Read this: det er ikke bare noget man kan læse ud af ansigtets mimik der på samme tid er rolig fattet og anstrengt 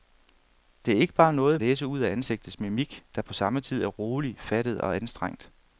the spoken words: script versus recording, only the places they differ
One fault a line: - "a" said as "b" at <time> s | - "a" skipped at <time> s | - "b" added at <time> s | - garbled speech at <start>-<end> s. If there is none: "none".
- "man kan" skipped at 1.6 s